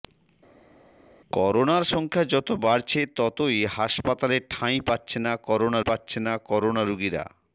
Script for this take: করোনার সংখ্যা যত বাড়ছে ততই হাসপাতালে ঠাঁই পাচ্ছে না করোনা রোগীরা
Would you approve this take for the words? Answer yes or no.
no